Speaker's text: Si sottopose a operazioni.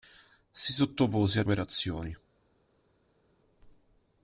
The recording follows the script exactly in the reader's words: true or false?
true